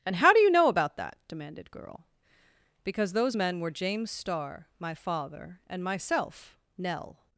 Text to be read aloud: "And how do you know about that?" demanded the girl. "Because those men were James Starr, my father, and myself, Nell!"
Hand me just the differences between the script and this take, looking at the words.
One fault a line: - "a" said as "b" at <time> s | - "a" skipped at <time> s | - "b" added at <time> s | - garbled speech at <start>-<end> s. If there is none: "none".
- "the" skipped at 1.7 s